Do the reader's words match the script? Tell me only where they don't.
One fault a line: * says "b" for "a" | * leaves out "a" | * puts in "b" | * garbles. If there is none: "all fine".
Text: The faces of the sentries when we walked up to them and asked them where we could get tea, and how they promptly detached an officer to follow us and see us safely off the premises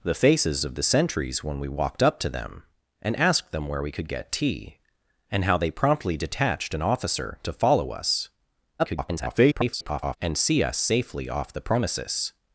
* garbles